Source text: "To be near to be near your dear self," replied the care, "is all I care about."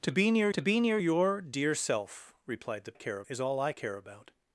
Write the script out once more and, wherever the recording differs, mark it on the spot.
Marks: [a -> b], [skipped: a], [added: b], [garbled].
"To be near to be near your dear self," replied the care, "is all I care about."